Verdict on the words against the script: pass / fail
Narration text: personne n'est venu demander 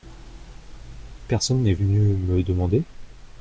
fail